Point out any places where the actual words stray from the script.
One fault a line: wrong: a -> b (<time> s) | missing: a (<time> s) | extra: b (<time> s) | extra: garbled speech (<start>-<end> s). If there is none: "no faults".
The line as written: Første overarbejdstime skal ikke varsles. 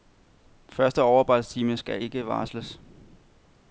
no faults